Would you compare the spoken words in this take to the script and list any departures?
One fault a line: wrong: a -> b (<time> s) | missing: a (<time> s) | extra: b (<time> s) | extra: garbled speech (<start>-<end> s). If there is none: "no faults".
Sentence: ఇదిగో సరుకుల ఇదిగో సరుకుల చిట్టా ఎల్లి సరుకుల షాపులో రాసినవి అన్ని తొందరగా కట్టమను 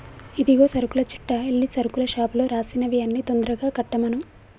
missing: ఇదిగో సరుకుల (1.0 s)